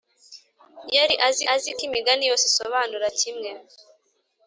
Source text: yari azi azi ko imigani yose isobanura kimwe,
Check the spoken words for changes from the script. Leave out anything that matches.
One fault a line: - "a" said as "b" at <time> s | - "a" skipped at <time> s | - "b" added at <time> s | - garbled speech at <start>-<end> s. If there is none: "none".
none